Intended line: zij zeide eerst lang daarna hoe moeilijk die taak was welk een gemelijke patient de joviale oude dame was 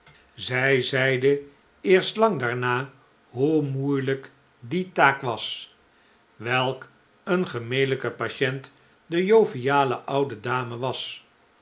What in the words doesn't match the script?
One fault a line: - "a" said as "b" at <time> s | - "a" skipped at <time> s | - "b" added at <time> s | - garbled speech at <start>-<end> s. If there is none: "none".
none